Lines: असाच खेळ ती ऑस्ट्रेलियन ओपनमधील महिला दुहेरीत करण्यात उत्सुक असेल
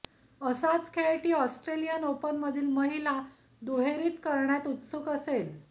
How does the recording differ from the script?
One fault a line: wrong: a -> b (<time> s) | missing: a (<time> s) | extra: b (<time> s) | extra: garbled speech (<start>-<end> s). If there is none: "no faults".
no faults